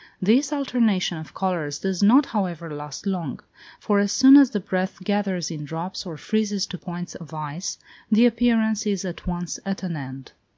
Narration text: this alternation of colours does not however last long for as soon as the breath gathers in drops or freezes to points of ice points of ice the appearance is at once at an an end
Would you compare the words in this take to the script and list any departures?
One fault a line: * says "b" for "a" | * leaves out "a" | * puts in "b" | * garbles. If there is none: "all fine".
* leaves out "points of ice"
* leaves out "an"